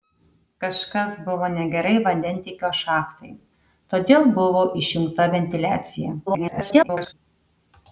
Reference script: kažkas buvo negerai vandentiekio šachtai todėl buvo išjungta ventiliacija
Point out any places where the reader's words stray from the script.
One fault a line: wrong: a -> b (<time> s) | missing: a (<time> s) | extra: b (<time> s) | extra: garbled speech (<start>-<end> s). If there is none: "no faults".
extra: garbled speech (6.3-7.1 s)